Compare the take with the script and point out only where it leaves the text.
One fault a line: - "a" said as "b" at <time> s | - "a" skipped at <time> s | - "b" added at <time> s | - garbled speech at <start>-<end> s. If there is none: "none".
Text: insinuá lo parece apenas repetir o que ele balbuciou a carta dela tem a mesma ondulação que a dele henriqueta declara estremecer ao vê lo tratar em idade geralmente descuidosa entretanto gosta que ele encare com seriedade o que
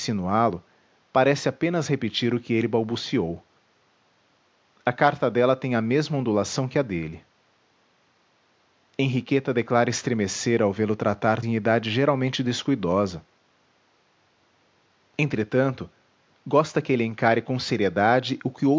none